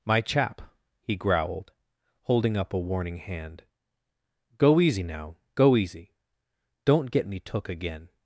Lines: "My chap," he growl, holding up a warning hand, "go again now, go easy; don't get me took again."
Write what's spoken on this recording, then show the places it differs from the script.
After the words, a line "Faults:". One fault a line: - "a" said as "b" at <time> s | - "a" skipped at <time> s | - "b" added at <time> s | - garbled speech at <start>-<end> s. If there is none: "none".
"My chap," he growled, holding up a warning hand, "go easy now, go easy; don't get me took again."
Faults:
- "growl" said as "growled" at 1.1 s
- "again" said as "easy" at 4.8 s